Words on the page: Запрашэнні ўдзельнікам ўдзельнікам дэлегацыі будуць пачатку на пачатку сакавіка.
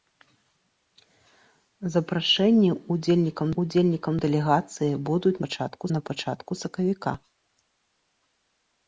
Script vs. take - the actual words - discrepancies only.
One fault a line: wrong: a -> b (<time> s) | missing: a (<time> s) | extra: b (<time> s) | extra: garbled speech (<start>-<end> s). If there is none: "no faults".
no faults